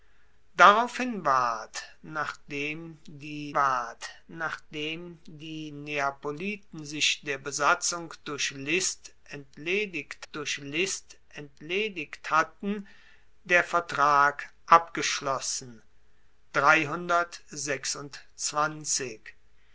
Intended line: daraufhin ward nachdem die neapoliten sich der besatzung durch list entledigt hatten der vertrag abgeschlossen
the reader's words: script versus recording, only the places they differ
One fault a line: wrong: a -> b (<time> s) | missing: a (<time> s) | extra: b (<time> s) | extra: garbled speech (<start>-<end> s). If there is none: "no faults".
extra: ward nachdem die (3.5 s)
extra: durch list entledigt (10.3 s)